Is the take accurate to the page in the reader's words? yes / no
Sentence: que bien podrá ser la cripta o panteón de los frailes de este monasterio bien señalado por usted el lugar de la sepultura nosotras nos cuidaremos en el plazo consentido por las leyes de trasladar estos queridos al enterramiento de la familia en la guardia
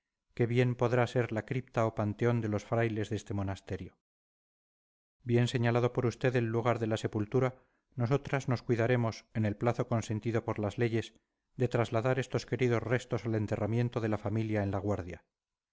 no